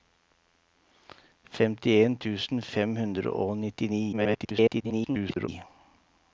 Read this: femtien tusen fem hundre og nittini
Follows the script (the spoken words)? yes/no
no